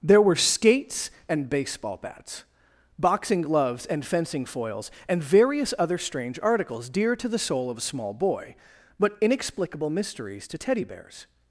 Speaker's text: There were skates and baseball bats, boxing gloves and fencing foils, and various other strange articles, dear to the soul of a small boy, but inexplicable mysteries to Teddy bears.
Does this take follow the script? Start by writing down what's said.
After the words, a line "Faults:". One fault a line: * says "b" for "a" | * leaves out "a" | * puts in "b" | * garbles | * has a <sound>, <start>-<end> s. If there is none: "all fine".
There were skates and baseball bats, boxing gloves and fencing foils, and various other strange articles, dear to the soul of a small boy, but inexplicable mysteries to Teddy bears.
Faults:
all fine